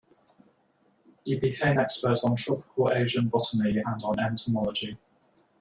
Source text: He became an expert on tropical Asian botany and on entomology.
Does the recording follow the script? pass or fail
fail